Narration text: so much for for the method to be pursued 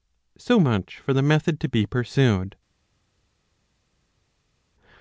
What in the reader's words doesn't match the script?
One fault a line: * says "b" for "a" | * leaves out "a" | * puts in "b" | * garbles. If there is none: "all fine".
* leaves out "for"